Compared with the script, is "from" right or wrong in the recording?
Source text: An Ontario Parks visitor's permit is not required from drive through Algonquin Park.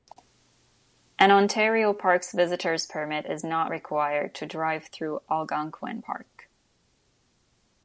wrong